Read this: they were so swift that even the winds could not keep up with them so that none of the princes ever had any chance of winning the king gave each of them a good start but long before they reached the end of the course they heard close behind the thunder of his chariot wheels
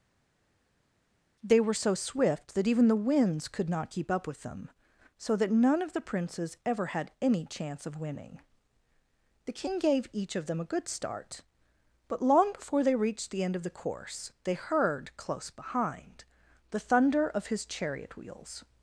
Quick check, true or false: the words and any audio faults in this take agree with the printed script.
true